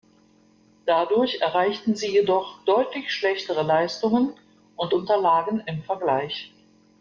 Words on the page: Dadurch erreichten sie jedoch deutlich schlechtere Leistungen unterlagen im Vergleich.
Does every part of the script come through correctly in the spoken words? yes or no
no